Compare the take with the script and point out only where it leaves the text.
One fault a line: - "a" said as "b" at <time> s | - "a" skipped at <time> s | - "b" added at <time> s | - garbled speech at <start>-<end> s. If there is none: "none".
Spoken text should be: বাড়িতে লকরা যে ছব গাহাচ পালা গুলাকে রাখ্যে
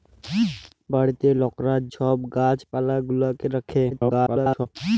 - "যে" skipped at 1.8 s
- garbled speech at 3.9-4.7 s